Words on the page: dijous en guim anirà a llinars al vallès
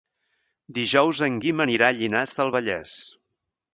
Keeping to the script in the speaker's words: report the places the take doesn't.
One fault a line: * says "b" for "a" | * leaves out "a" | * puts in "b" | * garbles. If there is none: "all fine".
* says "del" for "al"